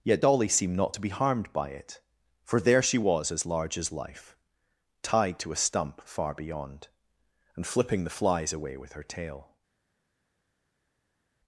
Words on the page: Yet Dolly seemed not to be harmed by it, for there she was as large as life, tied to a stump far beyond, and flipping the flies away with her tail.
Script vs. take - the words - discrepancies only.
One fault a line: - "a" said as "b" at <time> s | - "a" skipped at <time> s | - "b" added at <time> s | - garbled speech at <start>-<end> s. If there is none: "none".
none